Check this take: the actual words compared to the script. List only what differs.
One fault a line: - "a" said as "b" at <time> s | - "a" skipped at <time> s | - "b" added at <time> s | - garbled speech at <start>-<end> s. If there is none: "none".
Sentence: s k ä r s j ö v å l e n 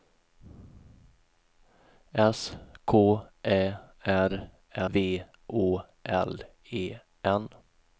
- "s j ö" skipped at 4.5 s